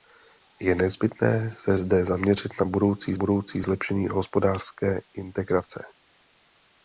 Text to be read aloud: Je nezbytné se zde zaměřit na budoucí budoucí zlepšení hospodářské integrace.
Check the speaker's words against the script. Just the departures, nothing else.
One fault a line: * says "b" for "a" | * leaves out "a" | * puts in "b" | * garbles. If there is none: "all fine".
all fine